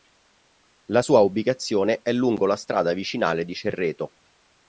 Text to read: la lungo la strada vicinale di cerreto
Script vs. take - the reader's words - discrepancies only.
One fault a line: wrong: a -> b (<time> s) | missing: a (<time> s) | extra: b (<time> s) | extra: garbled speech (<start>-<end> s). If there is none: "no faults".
extra: sua ubicazione è (1.0 s)